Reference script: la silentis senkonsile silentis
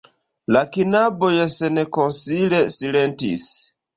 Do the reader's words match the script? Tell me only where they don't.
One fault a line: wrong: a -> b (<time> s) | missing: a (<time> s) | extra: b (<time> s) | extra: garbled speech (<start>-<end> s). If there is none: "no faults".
wrong: silentis -> knaboj (0.8 s)